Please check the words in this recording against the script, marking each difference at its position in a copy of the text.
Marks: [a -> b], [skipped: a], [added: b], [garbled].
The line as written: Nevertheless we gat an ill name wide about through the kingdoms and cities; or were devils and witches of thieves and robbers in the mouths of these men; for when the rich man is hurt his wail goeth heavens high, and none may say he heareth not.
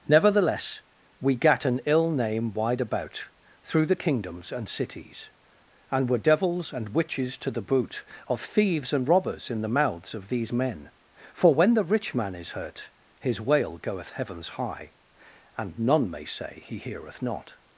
Nevertheless we gat an ill name wide about through the kingdoms and cities; [or -> and] were devils and witches [added: to the boot] of thieves and robbers in the mouths of these men; for when the rich man is hurt his wail goeth heavens high, and none may say he heareth not.